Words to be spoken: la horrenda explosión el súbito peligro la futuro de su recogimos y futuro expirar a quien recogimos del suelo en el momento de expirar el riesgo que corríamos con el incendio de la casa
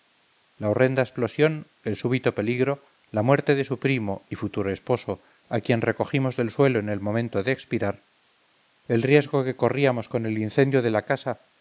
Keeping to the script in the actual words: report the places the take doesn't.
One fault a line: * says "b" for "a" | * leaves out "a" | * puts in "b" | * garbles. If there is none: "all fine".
* says "muerte" for "futuro"
* says "primo" for "recogimos"
* says "esposo" for "expirar"